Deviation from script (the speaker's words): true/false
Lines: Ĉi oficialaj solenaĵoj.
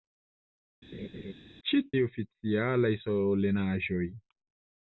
false